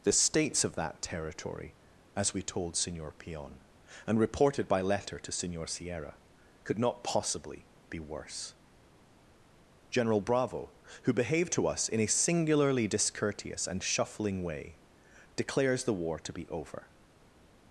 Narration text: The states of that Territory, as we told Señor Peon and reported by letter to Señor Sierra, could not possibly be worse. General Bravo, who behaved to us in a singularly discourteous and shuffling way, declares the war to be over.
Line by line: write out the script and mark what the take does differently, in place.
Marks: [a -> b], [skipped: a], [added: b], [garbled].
The states of that Territory, as we told Señor Peon and reported by letter to Señor Sierra, could not possibly be worse. General Bravo, who behaved to us in a singularly discourteous and shuffling way, declares the war to be over.